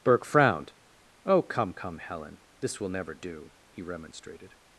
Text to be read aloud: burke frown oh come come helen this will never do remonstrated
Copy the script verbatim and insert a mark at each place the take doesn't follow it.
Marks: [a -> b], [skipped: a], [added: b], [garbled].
burke [frown -> frowned] oh come come helen this will never do [added: he] remonstrated